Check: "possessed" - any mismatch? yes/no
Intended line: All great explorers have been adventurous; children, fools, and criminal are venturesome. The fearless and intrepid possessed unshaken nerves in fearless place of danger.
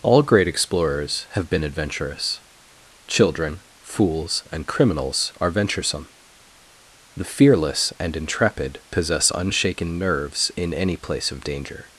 yes